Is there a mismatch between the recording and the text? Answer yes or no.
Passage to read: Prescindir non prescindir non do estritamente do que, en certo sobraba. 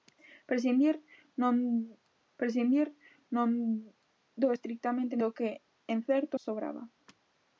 no